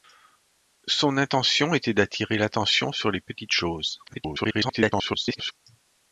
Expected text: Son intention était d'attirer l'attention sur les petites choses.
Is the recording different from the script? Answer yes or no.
yes